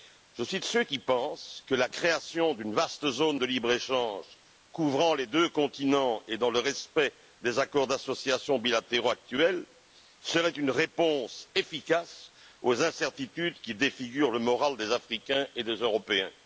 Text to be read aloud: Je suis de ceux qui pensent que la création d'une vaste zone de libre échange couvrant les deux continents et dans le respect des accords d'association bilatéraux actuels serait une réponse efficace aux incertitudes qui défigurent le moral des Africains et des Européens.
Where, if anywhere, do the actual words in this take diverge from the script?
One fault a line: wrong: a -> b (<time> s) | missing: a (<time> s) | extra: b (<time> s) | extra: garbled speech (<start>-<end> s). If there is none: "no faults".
no faults